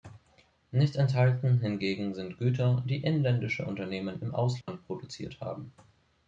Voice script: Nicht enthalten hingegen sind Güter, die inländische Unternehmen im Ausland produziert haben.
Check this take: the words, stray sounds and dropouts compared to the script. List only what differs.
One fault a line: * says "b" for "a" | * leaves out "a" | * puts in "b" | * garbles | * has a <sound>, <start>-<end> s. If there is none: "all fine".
* has a dropout, 4.6-4.7 s